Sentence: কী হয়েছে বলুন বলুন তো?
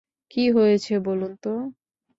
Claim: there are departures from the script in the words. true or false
true